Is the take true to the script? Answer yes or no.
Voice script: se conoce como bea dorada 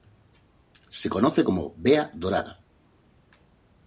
yes